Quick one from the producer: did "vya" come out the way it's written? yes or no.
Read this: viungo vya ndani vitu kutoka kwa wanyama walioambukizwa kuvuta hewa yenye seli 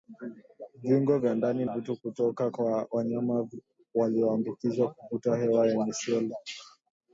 yes